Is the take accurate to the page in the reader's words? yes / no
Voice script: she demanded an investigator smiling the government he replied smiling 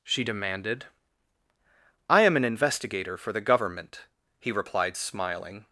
no